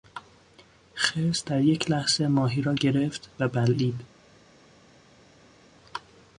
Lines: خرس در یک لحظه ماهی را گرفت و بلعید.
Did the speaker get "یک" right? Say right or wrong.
right